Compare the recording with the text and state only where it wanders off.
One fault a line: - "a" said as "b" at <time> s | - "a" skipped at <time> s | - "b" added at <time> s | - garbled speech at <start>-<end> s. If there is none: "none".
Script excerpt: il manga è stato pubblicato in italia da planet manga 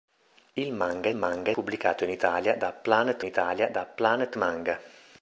- "stato" said as "manga" at 1.1 s
- "italia da planet" added at 3.2 s